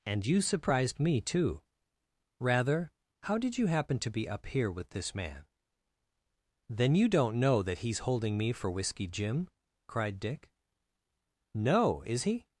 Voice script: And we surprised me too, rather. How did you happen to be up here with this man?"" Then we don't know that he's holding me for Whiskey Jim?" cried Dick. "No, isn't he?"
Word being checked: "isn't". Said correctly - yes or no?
no